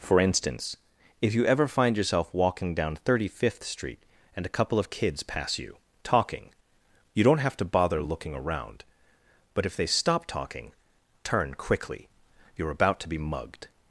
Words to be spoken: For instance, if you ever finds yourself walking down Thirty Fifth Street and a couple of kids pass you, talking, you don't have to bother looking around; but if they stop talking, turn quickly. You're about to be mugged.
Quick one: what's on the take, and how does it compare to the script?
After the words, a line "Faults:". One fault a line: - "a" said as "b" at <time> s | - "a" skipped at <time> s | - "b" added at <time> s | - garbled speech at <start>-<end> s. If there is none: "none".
For instance, if you ever find yourself walking down Thirty Fifth Street and a couple of kids pass you, talking, you don't have to bother looking around; but if they stop talking, turn quickly. You're about to be mugged.
Faults:
- "finds" said as "find" at 1.7 s